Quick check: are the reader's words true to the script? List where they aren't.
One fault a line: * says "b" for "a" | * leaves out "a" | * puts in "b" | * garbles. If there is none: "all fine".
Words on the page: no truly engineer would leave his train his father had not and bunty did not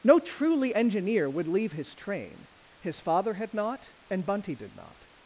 all fine